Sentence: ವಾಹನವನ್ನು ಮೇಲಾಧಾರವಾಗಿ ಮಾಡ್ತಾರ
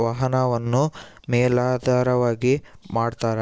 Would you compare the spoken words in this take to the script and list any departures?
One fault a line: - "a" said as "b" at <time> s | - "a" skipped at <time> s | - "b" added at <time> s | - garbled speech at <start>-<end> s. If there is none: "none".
none